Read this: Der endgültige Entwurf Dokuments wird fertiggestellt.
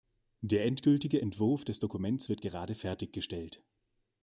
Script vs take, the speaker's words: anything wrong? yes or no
yes